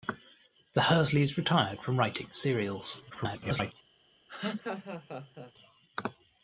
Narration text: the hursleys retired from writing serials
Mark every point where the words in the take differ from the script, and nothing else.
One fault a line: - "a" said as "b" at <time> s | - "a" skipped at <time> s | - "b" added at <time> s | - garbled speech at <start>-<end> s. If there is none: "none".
- garbled speech at 3.1-3.7 s